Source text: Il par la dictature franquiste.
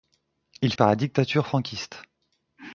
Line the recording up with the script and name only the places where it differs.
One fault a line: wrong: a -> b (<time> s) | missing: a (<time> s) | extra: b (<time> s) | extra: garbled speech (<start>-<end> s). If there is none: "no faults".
no faults